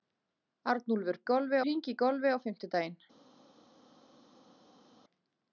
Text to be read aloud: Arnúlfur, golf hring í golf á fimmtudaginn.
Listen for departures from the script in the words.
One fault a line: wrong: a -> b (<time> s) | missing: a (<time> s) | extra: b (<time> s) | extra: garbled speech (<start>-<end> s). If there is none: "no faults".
no faults